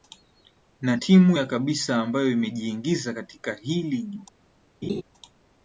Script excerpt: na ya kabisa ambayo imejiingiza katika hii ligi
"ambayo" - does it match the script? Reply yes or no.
yes